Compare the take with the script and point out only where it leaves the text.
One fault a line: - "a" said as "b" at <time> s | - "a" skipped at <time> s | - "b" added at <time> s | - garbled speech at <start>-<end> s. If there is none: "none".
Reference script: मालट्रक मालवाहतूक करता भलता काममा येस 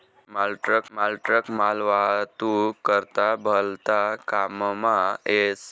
- "मालट्रक" added at 0.9 s